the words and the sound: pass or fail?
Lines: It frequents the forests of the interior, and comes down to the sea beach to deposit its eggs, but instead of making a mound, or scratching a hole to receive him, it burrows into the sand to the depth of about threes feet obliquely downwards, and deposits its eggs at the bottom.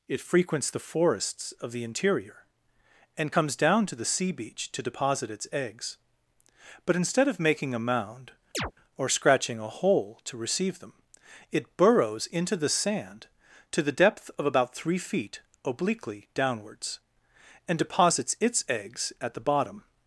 fail